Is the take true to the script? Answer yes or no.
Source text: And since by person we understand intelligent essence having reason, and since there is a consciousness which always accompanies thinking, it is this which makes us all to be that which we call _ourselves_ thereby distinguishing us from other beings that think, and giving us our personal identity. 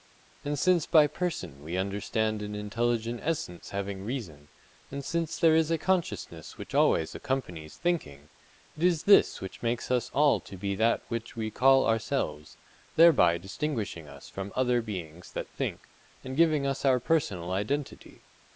no